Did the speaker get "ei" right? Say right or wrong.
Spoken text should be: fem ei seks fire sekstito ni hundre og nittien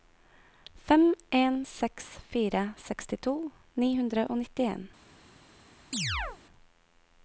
wrong